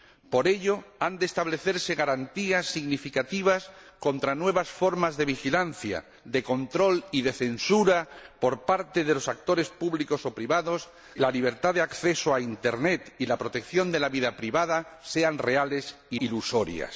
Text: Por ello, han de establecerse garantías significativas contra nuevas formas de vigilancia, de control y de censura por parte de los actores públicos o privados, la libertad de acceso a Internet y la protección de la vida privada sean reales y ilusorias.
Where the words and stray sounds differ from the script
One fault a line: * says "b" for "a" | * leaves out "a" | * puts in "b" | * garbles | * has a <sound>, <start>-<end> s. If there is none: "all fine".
all fine